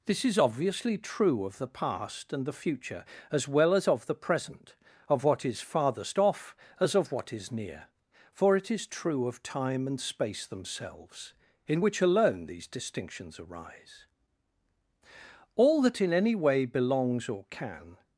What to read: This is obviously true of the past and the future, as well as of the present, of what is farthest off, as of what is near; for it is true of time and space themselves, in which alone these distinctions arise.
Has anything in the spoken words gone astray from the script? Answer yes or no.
yes